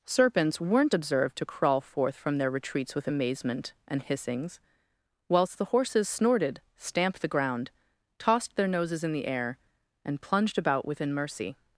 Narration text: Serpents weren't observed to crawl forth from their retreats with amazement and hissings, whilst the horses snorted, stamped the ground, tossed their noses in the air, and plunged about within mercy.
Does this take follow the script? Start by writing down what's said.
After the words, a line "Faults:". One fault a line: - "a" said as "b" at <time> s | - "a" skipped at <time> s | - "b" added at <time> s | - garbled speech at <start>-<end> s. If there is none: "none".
Serpents weren't observed to crawl forth from their retreats with amazement and hissings, whilst the horses snorted, stamped the ground, tossed their noses in the air, and plunged about within mercy.
Faults:
none